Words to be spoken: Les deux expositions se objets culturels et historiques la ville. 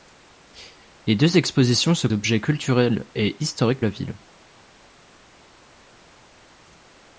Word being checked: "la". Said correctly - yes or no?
yes